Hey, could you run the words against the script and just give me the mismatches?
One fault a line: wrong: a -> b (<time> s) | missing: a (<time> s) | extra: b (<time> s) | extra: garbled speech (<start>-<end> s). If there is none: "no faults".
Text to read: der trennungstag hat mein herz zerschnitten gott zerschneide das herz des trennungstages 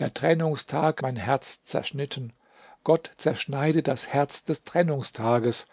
missing: hat (1.0 s)